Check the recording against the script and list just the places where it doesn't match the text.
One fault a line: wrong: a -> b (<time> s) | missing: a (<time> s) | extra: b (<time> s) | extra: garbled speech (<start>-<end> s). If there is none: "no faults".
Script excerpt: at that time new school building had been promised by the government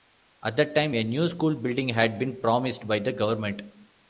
extra: a (0.9 s)